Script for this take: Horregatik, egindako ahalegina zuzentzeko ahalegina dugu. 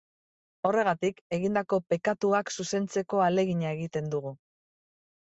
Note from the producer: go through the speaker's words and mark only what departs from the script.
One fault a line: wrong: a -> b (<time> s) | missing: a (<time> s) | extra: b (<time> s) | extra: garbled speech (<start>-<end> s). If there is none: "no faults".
wrong: ahalegina -> pekatuak (1.9 s)
extra: egiten (3.8 s)